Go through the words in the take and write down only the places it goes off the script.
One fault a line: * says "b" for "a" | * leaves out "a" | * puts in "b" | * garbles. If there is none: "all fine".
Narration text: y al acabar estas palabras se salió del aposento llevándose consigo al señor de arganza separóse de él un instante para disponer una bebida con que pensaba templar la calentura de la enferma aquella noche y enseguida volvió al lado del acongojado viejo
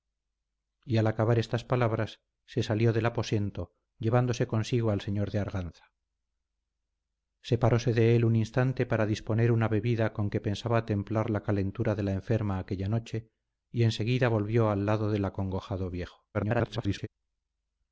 * garbles